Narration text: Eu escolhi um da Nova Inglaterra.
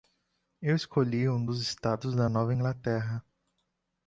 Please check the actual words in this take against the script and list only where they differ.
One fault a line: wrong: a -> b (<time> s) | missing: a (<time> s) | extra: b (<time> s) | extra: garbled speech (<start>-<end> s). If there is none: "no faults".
extra: dos estados (1.4 s)